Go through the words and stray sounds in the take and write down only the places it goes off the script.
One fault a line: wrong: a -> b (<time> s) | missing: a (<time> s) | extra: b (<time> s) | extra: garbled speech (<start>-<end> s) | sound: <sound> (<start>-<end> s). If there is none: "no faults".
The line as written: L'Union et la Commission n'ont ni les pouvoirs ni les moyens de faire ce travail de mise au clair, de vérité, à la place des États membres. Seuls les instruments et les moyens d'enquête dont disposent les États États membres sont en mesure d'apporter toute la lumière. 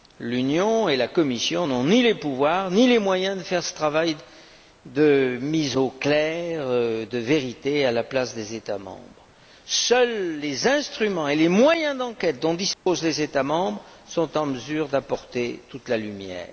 sound: dropout (12.7-12.9 s)
missing: États (13.4 s)